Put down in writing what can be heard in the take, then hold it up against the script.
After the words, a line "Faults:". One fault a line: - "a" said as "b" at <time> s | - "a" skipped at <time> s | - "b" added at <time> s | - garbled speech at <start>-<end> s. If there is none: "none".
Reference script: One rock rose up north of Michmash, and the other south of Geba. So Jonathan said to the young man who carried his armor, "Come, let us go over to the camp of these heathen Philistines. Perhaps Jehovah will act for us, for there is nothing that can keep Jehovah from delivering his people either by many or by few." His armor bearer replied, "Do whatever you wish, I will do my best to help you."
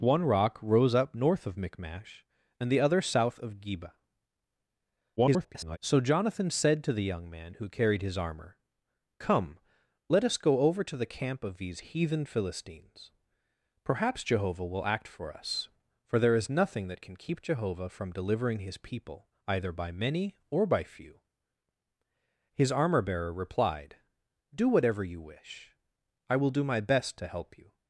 One rock rose up north of Michmash, and the other south of Geba. [garbled] So Jonathan said to the young man who carried his armor, "Come, let us go over to the camp of these heathen Philistines. Perhaps Jehovah will act for us, for there is nothing that can keep Jehovah from delivering his people either by many or by few." His armor bearer replied, "Do whatever you wish, I will do my best to help you."
Faults:
- garbled speech at 5.2-5.8 s